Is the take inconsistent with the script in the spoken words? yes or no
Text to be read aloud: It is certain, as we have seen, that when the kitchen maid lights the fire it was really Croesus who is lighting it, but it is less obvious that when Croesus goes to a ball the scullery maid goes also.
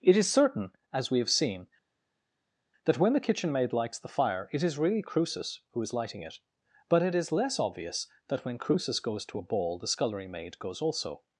yes